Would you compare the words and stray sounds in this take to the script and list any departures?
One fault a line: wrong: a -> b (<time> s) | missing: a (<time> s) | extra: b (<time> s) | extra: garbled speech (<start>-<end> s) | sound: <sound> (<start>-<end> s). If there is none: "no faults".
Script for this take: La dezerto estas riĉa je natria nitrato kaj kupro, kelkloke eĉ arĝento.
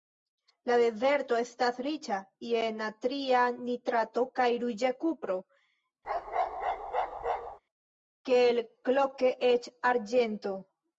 extra: ruĝa (4.7 s)
sound: bark (6.0-7.6 s)